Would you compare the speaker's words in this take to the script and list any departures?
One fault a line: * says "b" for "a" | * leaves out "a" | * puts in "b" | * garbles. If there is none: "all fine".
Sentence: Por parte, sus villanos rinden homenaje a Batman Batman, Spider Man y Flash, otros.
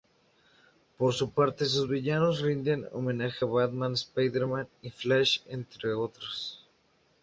* puts in "su"
* leaves out "Batman"
* puts in "entre"